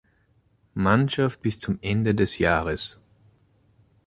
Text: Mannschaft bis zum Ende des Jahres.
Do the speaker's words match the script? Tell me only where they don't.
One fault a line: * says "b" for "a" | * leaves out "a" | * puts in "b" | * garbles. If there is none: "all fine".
all fine